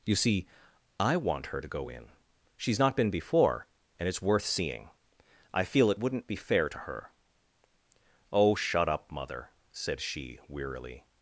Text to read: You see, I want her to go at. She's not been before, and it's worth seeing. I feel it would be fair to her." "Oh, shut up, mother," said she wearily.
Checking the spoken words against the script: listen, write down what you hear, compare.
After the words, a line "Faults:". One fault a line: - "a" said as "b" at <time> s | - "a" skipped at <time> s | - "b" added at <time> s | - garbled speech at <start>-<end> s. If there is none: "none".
You see, I want her to go in. She's not been before, and it's worth seeing. I feel it wouldn't be fair to her." "Oh, shut up, mother," said she wearily.
Faults:
- "at" said as "in" at 1.9 s
- "would" said as "wouldn't" at 6.0 s